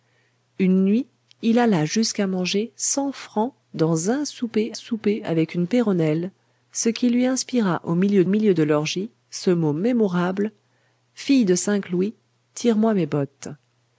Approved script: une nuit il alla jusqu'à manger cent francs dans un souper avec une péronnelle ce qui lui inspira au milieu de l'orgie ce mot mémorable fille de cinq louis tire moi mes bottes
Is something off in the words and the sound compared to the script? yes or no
yes